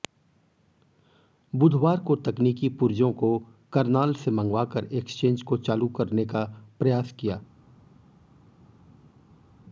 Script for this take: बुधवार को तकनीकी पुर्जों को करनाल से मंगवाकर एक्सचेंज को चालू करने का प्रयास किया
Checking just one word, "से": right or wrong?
right